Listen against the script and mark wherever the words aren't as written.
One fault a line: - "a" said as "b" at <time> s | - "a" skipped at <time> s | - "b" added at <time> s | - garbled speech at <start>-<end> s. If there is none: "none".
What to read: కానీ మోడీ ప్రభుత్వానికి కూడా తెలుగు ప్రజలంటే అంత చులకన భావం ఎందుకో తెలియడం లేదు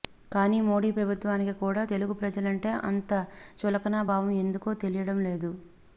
none